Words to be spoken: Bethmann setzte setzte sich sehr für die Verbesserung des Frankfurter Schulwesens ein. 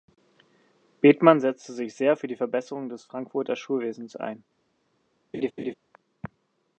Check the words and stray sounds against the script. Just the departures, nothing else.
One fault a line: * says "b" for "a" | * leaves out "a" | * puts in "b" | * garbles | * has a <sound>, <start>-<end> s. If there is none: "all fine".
* leaves out "setzte"
* has a laugh, 5.3-5.7 s